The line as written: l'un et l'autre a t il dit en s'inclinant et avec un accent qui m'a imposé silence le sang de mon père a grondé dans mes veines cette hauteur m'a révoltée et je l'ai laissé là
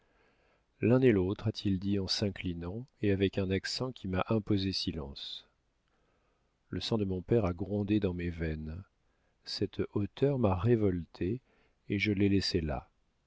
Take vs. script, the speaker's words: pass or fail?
pass